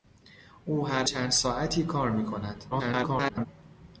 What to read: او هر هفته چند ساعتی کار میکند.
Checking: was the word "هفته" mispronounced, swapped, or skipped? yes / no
yes